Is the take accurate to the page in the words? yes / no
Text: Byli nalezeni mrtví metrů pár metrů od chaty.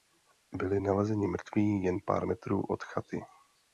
no